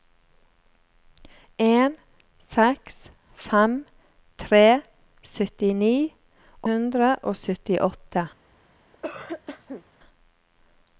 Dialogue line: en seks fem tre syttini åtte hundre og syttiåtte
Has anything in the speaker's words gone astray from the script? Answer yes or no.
yes